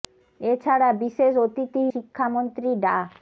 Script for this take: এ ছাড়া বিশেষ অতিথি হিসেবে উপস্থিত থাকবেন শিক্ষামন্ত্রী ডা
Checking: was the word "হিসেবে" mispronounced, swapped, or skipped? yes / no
yes